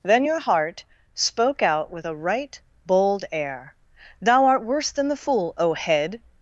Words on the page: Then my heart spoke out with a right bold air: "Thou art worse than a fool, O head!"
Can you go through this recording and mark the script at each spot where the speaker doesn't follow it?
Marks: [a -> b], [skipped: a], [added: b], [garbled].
Then [my -> your] heart spoke out with a right bold air: "Thou art worse than [a -> the] fool, O head!"